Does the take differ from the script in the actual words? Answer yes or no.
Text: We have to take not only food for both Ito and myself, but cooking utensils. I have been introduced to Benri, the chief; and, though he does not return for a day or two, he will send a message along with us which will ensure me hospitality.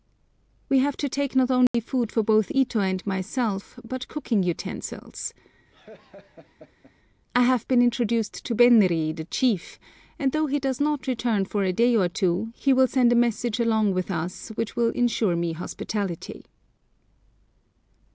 no